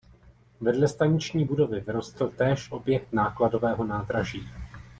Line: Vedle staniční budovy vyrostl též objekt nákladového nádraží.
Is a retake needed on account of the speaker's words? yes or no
no